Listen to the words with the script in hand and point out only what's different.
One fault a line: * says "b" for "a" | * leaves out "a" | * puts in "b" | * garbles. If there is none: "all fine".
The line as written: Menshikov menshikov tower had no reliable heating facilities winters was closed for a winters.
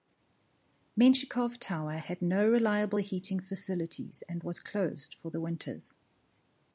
* leaves out "menshikov"
* says "and" for "winters"
* says "the" for "a"